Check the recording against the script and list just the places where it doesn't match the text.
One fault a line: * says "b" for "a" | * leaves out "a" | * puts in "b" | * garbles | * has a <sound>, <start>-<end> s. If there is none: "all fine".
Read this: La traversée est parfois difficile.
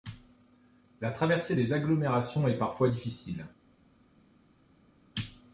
* puts in "des agglomérations"